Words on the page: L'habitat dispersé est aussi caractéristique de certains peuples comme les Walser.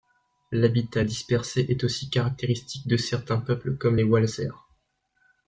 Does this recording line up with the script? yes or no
yes